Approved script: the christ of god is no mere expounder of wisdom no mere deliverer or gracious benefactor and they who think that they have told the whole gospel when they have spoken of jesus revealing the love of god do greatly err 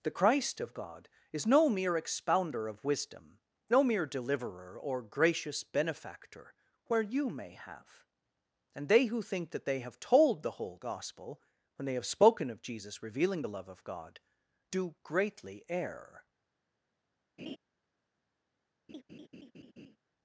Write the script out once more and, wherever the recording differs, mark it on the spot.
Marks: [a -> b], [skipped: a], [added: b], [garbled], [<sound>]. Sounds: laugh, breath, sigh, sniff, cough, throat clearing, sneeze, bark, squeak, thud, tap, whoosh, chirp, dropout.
the christ of god is no mere expounder of wisdom no mere deliverer or gracious benefactor [added: where you may have] and they who think that they have told the whole gospel when they have spoken of jesus revealing the love of god do greatly err [laugh] [laugh]